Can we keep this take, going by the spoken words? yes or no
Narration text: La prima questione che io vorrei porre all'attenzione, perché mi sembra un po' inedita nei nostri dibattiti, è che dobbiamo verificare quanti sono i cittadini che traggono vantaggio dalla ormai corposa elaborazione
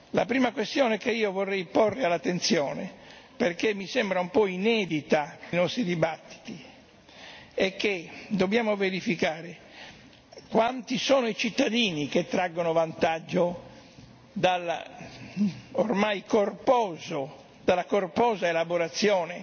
no